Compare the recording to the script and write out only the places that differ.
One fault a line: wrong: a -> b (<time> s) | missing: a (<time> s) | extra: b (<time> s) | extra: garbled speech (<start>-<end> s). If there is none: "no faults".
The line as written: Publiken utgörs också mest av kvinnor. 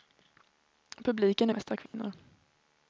missing: utgörs också (1.5 s)